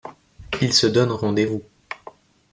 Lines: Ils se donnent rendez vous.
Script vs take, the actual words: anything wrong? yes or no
no